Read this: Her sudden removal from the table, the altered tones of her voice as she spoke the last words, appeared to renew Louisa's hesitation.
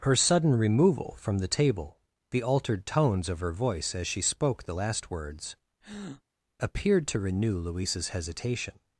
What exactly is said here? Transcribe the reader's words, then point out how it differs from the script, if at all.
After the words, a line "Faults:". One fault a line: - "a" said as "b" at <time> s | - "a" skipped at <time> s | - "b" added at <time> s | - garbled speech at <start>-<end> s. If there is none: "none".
Her sudden removal from the table, the altered tones of her voice as she spoke the last words, appeared to renew Louisa's hesitation.
Faults:
none